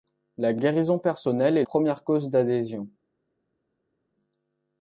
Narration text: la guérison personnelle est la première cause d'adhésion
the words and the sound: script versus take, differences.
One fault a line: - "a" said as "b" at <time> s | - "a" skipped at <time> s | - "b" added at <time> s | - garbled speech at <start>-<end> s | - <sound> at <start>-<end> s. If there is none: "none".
- "la" skipped at 1.6 s